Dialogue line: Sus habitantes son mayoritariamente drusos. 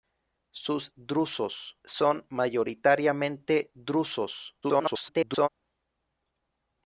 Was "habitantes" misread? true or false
true